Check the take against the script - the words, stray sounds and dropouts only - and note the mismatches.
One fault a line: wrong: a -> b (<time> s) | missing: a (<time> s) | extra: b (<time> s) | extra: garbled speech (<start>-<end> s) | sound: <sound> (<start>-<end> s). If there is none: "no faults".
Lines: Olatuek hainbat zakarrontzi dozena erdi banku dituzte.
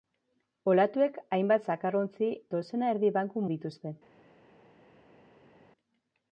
no faults